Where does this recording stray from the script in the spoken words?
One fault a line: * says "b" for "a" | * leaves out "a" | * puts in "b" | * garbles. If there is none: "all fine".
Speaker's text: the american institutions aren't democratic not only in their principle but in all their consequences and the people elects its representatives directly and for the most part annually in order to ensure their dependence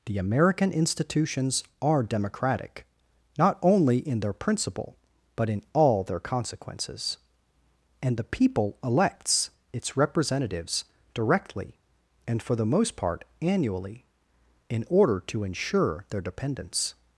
* says "are" for "aren't"